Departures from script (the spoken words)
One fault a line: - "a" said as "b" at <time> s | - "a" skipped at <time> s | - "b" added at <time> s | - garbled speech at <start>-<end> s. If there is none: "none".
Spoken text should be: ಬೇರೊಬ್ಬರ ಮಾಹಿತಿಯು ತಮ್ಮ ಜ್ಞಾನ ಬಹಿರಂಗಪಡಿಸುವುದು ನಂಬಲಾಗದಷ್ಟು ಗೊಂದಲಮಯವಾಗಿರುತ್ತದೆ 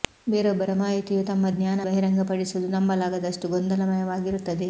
none